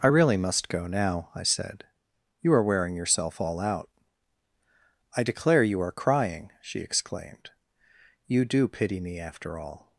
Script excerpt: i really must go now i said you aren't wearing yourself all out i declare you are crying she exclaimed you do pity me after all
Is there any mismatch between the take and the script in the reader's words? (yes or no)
yes